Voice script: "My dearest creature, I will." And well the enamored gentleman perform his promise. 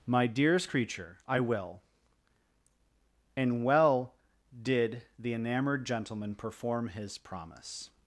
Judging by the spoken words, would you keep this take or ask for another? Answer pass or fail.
fail